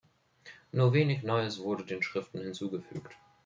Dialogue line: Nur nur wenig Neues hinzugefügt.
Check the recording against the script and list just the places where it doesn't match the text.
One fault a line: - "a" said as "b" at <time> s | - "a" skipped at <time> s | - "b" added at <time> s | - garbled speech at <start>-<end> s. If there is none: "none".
- "nur" skipped at 0.9 s
- "wurde den Schriften" added at 1.6 s